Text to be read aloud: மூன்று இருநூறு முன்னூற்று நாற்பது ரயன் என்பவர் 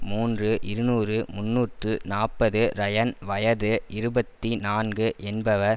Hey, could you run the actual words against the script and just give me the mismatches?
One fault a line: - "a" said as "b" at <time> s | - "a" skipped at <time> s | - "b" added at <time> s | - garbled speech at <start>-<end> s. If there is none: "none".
- "வயது இருபத்தி நான்கு" added at 3.2 s